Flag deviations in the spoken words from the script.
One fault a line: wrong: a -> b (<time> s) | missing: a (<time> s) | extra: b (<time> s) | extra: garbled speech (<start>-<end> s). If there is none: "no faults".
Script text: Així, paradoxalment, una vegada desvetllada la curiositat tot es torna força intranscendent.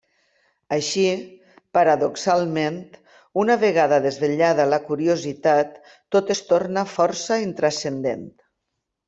no faults